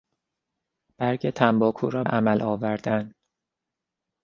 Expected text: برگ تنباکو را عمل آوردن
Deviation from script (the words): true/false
false